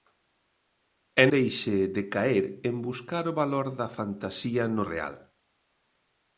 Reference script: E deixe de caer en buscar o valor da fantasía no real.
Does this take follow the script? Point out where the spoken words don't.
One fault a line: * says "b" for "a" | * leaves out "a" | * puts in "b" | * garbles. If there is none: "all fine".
all fine